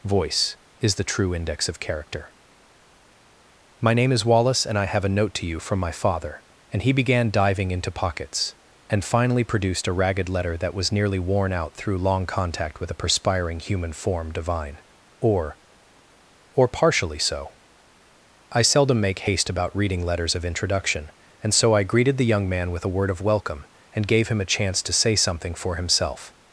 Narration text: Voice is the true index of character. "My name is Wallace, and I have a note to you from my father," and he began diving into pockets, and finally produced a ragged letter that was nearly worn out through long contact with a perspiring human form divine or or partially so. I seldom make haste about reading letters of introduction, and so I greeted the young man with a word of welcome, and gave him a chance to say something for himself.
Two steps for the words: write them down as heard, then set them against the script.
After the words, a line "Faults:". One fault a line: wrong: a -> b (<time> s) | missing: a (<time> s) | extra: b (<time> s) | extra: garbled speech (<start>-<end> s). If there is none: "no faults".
Voice is the true index of character. "My name is Wallace, and I have a note to you from my father," and he began diving into pockets, and finally produced a ragged letter that was nearly worn out through long contact with a perspiring human form divine or or partially so. I seldom make haste about reading letters of introduction, and so I greeted the young man with a word of welcome, and gave him a chance to say something for himself.
Faults:
no faults